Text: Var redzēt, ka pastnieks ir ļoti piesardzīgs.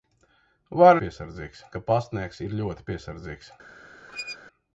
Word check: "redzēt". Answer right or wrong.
wrong